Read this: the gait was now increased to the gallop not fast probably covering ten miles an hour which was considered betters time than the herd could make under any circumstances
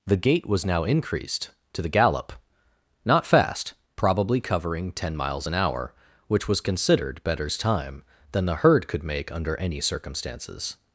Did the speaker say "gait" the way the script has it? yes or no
yes